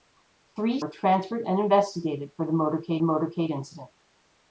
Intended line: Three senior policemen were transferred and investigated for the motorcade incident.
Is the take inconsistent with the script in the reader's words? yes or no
yes